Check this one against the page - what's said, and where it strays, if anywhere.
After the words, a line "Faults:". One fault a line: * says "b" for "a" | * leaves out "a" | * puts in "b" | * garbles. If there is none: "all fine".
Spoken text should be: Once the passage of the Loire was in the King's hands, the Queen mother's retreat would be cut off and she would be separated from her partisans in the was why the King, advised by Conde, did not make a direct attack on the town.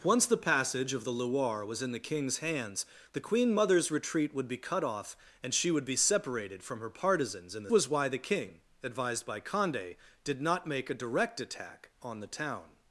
Once the passage of the Loire was in the King's hands, the Queen mother's retreat would be cut off and she would be separated from her partisans in the was why the King, advised by Conde, did not make a direct attack on the town.
Faults:
all fine